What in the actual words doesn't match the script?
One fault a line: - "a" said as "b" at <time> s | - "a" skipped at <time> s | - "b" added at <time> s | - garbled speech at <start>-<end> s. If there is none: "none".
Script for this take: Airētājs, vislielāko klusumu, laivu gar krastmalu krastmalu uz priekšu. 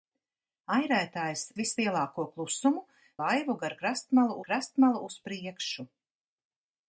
none